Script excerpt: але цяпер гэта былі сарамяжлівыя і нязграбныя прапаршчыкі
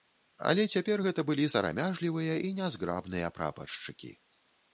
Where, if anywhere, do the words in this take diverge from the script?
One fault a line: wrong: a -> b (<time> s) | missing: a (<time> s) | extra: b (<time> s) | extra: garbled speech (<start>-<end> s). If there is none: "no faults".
no faults